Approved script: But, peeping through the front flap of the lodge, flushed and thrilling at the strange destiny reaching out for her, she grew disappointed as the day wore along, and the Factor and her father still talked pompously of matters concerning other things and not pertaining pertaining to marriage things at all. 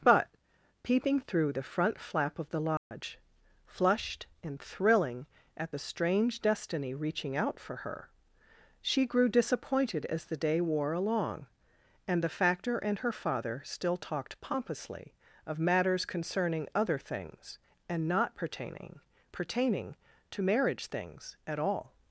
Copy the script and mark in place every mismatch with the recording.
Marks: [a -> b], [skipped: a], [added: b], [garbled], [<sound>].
But, peeping through the front flap of the lodge, [dropout] flushed and thrilling at the strange destiny reaching out for her, she grew disappointed as the day wore along, and the Factor and her father still talked pompously of matters concerning other things and not pertaining pertaining to marriage things at all.